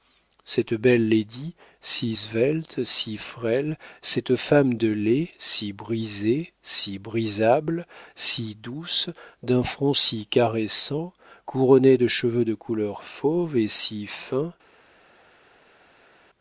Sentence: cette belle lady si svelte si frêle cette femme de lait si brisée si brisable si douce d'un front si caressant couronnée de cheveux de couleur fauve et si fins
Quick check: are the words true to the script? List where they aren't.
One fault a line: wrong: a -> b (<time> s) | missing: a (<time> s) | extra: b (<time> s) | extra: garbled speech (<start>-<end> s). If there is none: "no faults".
no faults